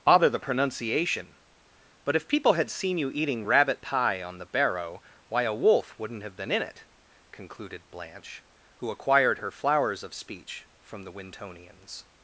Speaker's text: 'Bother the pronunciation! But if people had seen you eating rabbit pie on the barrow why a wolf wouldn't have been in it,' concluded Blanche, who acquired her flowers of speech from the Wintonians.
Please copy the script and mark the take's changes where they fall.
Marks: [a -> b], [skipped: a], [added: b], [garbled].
'Bother the pronunciation! But if people had seen you eating rabbit pie on the barrow why a wolf wouldn't have been in it,' concluded Blanche, who acquired her flowers of speech from the Wintonians.